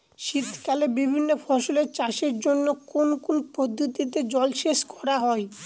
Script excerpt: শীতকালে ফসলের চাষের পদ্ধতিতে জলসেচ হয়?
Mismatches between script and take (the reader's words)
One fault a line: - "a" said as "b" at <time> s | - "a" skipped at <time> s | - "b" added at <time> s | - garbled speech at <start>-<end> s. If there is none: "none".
- "বিভিন্ন" added at 1.0 s
- "জন্য কোন কোন" added at 2.4 s
- "করা" added at 4.9 s